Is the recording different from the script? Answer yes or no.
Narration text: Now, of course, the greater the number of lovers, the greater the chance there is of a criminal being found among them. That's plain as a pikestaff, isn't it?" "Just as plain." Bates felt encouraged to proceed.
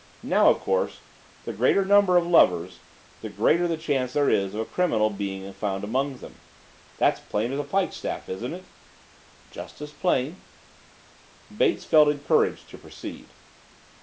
no